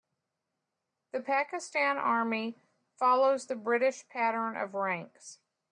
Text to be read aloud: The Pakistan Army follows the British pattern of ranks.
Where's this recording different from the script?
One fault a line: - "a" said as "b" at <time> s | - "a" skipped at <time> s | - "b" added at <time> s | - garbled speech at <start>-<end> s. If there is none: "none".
none